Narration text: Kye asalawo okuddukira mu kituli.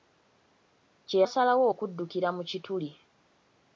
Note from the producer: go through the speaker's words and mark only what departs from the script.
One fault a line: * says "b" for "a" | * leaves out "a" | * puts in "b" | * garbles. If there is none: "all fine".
all fine